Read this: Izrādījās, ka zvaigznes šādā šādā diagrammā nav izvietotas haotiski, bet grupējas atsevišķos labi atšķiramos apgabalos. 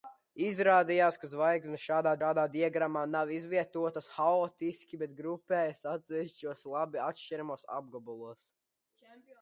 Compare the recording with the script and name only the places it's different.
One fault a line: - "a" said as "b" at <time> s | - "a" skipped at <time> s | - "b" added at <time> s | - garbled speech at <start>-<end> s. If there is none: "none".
none